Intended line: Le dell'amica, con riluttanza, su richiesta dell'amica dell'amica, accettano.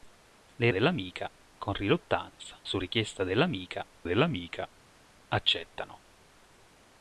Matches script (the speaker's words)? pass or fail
pass